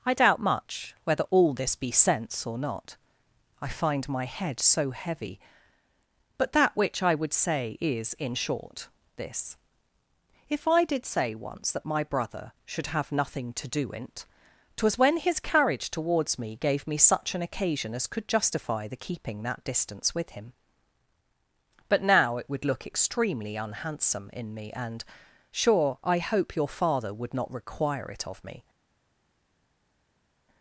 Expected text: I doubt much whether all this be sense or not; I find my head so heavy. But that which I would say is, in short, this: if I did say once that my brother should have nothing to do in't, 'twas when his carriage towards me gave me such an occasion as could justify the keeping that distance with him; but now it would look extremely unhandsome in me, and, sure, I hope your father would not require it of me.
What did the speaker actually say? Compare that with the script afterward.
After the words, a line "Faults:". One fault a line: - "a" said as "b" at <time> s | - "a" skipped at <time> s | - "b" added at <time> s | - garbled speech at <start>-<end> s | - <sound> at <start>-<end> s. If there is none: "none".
I doubt much whether all this be sense or not; I find my head so heavy. But that which I would say is, in short, this: if I did say once that my brother should have nothing to do in't, 'twas when his carriage towards me gave me such an occasion as could justify the keeping that distance with him; but now it would look extremely unhandsome in me, and, sure, I hope your father would not require it of me.
Faults:
none